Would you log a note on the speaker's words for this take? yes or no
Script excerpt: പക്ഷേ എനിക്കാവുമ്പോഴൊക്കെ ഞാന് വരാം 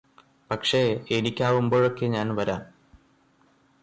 no